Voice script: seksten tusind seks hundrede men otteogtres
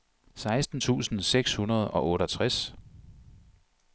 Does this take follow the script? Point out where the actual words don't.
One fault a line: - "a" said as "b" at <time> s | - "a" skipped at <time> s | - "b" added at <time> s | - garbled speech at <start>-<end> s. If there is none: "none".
- "men" said as "og" at 1.9 s